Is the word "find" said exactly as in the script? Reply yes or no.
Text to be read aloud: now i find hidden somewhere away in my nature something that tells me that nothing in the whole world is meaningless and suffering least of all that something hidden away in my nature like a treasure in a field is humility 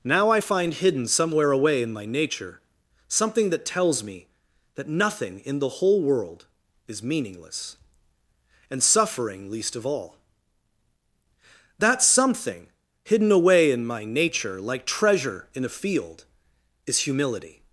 yes